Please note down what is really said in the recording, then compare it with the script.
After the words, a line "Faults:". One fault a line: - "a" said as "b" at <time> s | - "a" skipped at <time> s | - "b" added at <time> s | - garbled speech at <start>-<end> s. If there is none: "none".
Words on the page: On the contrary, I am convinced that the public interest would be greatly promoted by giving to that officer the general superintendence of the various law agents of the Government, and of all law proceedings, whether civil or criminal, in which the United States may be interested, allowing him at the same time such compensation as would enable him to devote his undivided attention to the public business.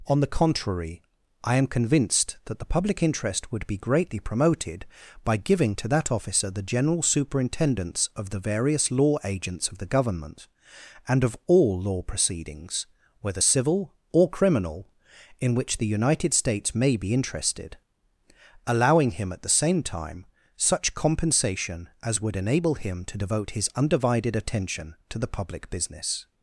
On the contrary, I am convinced that the public interest would be greatly promoted by giving to that officer the general superintendence of the various law agents of the Government, and of all law proceedings, whether civil or criminal, in which the United States may be interested, allowing him at the same time such compensation as would enable him to devote his undivided attention to the public business.
Faults:
none